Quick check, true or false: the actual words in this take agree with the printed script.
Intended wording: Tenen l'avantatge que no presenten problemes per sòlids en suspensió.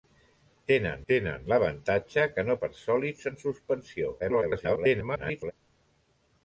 false